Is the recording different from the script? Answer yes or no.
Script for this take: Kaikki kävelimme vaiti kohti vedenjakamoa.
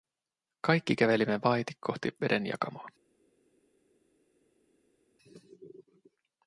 no